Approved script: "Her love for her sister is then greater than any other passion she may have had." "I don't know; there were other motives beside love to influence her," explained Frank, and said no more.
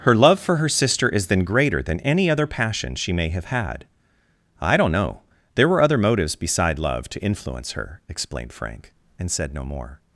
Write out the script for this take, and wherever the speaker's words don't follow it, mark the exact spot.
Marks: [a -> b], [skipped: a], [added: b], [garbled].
"Her love for her sister is then greater than any other passion she may have had." "I don't know; there were other motives beside love to influence her," explained Frank, and said no more.